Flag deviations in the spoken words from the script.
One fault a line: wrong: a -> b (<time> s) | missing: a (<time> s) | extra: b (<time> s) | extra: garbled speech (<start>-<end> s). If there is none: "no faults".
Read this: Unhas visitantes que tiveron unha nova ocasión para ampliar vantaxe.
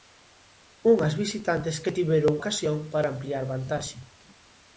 missing: unha nova (2.3 s)